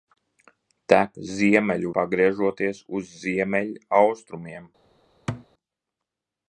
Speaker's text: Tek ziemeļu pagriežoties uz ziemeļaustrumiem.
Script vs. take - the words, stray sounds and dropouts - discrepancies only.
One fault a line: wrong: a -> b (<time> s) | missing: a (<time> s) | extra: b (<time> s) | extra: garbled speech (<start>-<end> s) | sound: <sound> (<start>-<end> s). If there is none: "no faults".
sound: thud (5.3-5.5 s)